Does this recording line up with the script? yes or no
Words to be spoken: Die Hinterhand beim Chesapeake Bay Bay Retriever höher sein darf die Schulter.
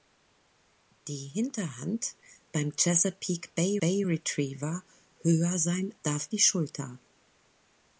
yes